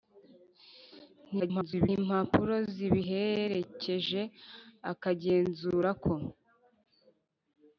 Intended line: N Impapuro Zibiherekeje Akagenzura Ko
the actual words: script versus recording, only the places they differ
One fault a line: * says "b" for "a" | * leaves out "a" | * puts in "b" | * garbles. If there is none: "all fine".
* garbles